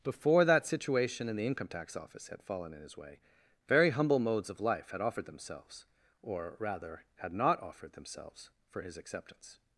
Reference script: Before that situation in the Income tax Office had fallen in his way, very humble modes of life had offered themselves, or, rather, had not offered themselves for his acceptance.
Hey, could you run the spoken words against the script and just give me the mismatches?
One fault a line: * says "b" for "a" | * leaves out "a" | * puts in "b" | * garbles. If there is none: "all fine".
all fine